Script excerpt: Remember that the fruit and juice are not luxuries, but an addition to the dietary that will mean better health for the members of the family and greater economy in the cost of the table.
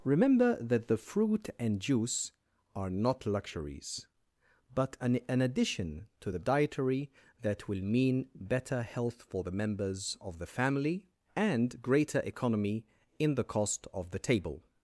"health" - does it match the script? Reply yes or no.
yes